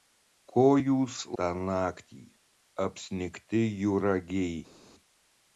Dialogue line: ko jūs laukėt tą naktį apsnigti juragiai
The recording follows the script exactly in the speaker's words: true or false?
false